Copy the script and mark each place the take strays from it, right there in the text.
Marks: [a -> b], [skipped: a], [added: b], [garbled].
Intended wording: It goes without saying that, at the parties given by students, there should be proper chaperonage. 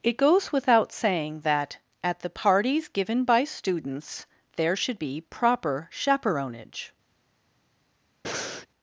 It goes without saying that, at the parties given by students, there should be proper chaperonage.